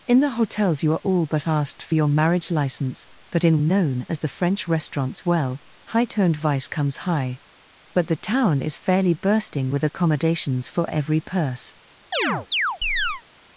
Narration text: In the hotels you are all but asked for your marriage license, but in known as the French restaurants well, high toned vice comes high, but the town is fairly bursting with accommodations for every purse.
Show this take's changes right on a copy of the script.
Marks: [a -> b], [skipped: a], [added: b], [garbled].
In the hotels you are all but asked for your marriage license, but in known as the French restaurants well, high toned vice comes high, but the town is fairly bursting with accommodations for every purse.